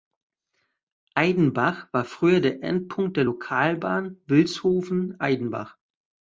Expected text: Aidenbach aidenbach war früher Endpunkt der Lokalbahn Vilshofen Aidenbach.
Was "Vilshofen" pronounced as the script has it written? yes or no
yes